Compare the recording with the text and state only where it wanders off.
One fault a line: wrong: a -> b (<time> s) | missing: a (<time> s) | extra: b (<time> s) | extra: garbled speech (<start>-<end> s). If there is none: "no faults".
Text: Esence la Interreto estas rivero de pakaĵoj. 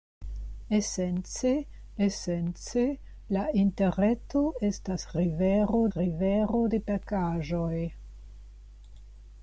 extra: esence (2.1 s)
extra: rivero (6.0 s)